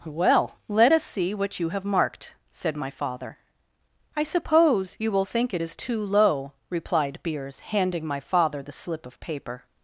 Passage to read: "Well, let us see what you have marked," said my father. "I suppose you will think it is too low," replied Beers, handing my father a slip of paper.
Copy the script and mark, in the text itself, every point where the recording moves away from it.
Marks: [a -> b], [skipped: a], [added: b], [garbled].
"Well, let us see what you have marked," said my father. "I suppose you will think it is too low," replied Beers, handing my father [a -> the] slip of paper.